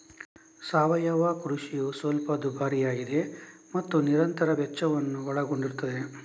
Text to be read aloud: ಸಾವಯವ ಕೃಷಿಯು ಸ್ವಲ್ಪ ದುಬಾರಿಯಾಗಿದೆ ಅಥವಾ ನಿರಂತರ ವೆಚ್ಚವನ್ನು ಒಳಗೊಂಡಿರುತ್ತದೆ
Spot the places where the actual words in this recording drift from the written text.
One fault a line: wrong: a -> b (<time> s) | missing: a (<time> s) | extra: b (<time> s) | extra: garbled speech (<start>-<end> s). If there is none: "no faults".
wrong: ಅಥವಾ -> ಮತ್ತು (3.8 s)